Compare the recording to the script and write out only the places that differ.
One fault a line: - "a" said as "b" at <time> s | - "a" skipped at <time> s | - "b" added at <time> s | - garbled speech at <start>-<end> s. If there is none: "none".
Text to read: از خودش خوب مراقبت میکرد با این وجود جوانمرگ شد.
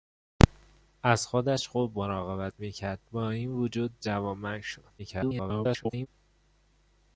- garbled speech at 5.0-6.1 s